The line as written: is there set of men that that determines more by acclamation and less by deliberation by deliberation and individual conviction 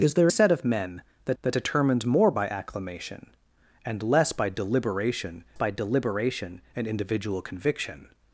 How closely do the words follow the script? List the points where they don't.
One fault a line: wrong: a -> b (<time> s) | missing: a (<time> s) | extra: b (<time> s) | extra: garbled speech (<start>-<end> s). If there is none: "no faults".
no faults